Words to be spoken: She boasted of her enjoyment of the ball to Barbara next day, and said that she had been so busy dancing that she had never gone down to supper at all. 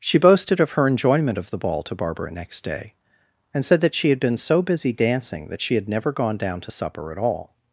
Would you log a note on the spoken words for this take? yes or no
no